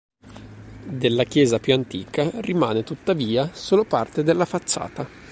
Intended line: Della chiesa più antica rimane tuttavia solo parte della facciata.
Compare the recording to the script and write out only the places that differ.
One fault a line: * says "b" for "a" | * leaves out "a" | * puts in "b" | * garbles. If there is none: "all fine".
all fine